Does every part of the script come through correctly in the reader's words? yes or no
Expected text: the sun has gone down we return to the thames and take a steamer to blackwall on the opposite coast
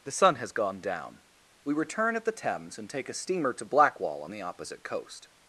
no